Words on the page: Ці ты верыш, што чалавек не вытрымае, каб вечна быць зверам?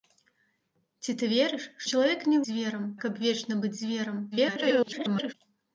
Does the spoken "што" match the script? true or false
false